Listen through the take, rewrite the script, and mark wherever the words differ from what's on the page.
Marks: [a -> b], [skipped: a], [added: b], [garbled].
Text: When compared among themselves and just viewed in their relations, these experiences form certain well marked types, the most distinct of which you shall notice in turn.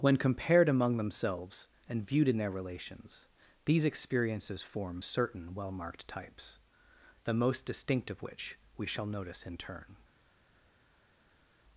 When compared among themselves and [skipped: just] viewed in their relations, these experiences form certain well marked types, the most distinct of which [you -> we] shall notice in turn.